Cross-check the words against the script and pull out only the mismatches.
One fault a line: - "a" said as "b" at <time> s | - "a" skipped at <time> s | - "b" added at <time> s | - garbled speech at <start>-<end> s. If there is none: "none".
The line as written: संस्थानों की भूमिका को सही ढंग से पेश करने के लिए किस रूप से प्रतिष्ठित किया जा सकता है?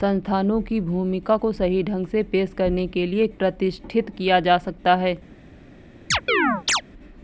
- "किस रूप से" skipped at 3.3 s